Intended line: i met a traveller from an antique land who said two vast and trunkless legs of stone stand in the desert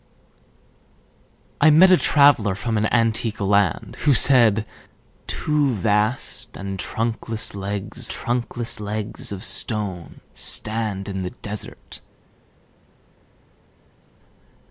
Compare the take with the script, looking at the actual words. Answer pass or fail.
fail